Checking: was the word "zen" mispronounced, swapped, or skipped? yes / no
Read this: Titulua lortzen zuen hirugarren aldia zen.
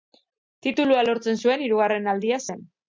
no